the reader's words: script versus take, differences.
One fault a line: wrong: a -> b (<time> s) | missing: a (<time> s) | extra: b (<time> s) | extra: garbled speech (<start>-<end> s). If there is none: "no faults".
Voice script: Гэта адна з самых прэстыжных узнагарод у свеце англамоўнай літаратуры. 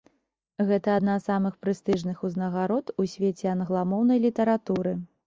no faults